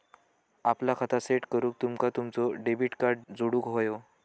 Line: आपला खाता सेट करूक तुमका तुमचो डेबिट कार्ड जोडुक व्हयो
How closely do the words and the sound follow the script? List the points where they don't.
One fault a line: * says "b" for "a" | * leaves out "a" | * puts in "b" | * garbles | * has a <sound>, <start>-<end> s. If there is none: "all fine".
all fine